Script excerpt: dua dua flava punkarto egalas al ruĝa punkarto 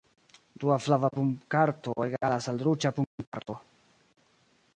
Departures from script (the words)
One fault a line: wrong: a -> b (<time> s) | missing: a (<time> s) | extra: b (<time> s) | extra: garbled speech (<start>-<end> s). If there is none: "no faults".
missing: dua (0.8 s)